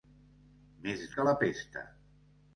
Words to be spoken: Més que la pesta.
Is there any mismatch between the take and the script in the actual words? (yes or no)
no